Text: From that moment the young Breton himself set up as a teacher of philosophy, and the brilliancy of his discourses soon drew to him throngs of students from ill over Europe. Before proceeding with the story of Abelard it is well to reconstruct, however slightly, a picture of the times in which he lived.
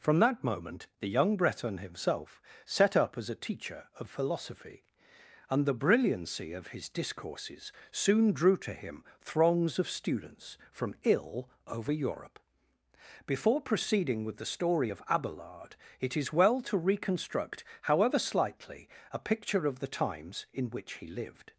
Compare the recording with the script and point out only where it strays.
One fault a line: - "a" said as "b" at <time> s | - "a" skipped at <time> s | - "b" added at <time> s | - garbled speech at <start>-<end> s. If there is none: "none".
none